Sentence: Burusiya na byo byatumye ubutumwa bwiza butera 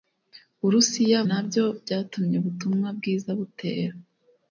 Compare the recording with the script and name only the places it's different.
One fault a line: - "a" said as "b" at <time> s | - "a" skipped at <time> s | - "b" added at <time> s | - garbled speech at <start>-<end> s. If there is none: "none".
none